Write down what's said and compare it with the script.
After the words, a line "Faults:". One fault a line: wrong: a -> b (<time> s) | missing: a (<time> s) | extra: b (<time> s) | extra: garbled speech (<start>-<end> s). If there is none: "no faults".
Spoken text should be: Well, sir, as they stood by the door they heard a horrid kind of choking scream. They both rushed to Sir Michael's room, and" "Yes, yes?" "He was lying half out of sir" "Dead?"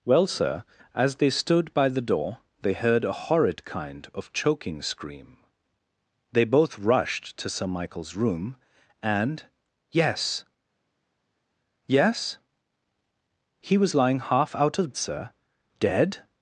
Well, sir, as they stood by the door they heard a horrid kind of choking scream. They both rushed to Sir Michael's room, and" "Yes, yes?" "He was lying half out of sir" "Dead?"
Faults:
no faults